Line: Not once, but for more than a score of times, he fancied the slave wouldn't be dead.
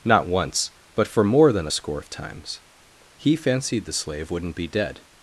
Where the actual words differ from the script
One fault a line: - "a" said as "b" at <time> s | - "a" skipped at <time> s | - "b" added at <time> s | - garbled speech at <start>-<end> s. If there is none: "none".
none